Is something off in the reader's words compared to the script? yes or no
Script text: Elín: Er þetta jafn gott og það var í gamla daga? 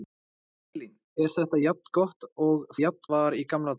yes